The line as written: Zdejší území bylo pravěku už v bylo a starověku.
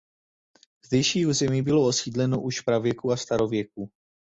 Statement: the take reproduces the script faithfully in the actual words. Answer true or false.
false